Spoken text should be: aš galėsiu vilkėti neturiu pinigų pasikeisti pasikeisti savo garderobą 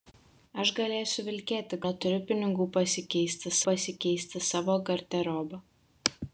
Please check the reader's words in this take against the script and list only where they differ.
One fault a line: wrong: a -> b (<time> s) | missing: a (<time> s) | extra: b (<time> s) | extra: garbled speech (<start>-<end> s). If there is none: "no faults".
no faults